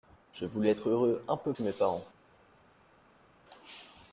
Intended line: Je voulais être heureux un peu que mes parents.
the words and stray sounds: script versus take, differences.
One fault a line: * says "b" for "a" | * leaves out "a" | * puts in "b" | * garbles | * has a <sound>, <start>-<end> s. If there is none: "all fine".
all fine